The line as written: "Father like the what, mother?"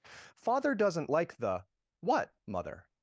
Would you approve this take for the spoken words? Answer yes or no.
no